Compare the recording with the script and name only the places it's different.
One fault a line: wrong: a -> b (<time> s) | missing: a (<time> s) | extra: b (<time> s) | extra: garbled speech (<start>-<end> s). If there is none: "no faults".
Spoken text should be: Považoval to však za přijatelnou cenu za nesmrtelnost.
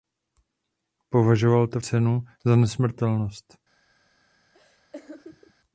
missing: však za přijatelnou (1.8 s)